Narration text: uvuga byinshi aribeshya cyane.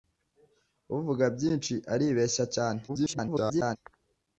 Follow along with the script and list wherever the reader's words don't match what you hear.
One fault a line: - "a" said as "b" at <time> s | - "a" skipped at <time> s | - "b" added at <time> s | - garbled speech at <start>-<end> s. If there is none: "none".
- garbled speech at 2.9-3.8 s